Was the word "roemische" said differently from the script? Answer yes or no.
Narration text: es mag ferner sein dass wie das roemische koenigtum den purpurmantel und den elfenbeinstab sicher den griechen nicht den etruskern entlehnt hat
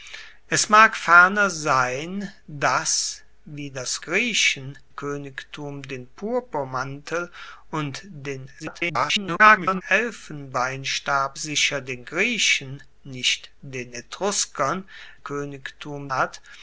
yes